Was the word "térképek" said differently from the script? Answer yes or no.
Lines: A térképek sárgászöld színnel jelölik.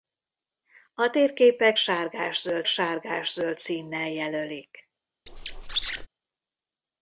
no